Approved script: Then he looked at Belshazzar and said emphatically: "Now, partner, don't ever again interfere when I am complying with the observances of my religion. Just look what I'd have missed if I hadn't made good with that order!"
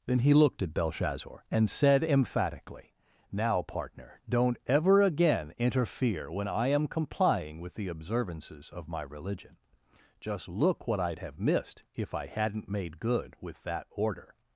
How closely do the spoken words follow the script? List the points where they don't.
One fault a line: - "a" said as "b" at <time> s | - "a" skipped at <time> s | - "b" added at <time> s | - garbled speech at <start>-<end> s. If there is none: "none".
none